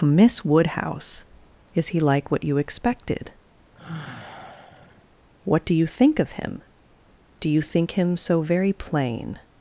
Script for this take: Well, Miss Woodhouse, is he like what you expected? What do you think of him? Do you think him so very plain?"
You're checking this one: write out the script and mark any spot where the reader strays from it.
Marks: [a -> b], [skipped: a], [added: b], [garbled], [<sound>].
[skipped: Well,] Miss Woodhouse, is he like what you expected? [sigh] What do you think of him? Do you think him so very plain?"